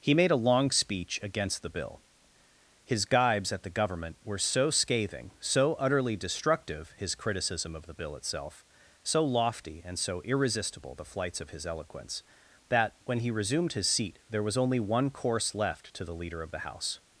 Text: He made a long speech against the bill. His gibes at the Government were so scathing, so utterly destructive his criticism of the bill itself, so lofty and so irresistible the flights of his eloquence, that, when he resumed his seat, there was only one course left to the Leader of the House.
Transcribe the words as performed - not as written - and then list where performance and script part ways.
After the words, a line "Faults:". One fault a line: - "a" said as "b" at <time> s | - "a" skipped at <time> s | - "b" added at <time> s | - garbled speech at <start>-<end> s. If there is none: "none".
He made a long speech against the bill. His gibes at the Government were so scathing, so utterly destructive his criticism of the bill itself, so lofty and so irresistible the flights of his eloquence, that, when he resumed his seat, there was only one course left to the Leader of the House.
Faults:
none